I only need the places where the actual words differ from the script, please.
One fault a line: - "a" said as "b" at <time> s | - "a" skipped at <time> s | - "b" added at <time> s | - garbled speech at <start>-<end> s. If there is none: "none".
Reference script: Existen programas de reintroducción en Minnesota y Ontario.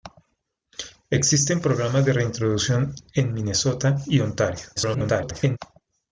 - garbled speech at 4.8-5.6 s